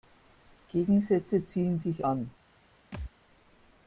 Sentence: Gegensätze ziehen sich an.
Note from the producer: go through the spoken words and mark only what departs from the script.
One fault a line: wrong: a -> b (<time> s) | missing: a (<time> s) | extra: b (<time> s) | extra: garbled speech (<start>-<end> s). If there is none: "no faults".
no faults